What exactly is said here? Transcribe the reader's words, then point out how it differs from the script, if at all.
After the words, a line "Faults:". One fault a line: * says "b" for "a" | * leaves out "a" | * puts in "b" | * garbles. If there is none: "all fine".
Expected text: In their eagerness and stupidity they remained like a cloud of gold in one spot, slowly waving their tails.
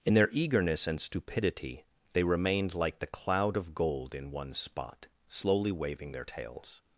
In their eagerness and stupidity they remained like the cloud of gold in one spot, slowly waving their tails.
Faults:
* says "the" for "a"